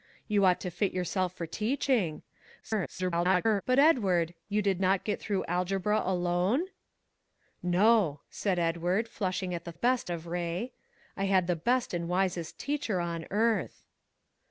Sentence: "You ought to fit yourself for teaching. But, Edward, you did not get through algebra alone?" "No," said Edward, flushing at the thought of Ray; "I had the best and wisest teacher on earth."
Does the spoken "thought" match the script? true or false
false